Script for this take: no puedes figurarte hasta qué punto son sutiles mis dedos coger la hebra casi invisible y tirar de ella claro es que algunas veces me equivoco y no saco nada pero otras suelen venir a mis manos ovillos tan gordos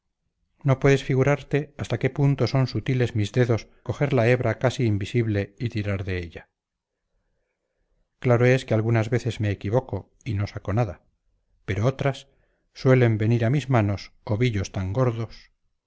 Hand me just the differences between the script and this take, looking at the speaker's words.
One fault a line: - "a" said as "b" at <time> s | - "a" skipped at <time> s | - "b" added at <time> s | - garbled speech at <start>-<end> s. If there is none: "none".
none